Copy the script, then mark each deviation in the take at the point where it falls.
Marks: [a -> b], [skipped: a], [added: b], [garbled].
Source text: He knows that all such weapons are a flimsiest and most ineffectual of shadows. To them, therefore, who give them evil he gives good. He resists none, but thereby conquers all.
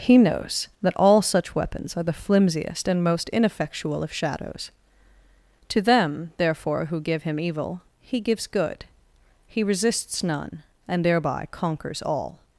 He knows that all such weapons are [a -> the] flimsiest and most ineffectual of shadows. To them, therefore, who give [them -> him] evil he gives good. He resists none, [but -> and] thereby conquers all.